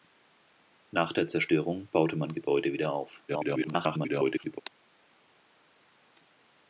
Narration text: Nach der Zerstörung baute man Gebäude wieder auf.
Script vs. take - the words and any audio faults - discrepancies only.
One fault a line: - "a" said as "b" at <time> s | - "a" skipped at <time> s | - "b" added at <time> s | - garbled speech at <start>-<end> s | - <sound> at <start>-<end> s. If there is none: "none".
- garbled speech at 3.3-4.6 s